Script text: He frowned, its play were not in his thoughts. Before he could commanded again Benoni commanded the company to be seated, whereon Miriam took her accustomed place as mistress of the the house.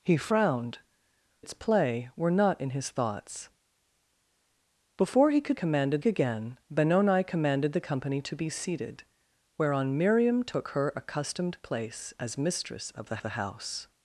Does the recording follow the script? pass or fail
pass